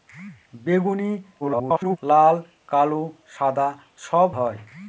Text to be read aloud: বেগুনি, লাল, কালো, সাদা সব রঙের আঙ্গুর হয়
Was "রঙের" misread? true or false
true